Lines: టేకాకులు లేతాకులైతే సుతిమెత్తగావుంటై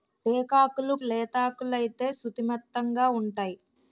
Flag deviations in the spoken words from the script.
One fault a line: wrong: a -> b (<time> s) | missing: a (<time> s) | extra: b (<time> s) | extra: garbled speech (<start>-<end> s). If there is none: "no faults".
no faults